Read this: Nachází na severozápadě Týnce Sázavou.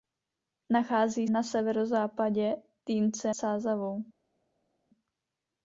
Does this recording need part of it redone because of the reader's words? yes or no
no